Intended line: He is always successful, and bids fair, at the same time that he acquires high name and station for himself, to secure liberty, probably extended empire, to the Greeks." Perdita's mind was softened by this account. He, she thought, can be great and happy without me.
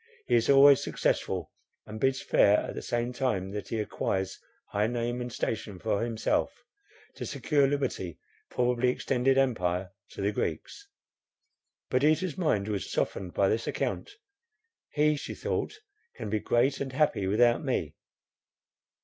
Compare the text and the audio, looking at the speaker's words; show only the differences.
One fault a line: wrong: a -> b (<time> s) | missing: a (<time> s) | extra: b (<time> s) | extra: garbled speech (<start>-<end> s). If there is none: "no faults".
no faults